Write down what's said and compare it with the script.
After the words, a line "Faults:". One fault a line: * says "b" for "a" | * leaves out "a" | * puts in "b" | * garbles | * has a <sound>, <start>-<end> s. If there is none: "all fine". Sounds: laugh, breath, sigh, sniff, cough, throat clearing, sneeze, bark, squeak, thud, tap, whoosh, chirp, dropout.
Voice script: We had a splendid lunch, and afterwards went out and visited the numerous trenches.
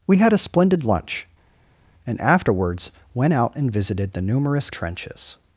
We had a splendid lunch, and afterwards went out and visited the numerous trenches.
Faults:
all fine